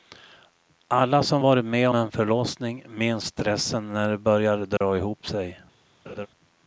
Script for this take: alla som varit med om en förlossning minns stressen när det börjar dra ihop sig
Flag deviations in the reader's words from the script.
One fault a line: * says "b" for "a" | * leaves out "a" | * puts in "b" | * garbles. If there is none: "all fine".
* leaves out "om"